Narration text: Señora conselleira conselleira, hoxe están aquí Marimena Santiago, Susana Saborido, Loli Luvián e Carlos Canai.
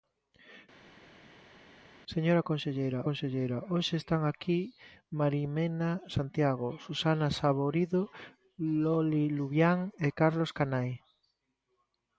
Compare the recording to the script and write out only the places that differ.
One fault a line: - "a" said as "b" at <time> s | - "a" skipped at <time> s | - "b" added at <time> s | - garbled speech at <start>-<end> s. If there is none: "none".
none